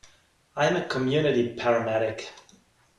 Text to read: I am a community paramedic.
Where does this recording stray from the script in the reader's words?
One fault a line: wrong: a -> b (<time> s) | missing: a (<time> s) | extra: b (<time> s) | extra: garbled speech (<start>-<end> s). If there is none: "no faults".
no faults